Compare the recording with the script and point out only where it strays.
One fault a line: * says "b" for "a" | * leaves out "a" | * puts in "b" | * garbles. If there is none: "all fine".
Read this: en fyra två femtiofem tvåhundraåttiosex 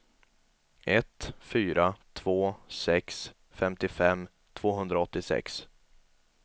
* says "ett" for "en"
* puts in "sex"